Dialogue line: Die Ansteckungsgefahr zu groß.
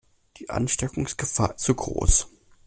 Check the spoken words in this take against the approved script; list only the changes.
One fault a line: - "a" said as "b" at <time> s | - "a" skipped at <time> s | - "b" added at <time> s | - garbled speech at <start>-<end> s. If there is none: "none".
none